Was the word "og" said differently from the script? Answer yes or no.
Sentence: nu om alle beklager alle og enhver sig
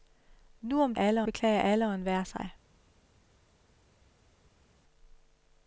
no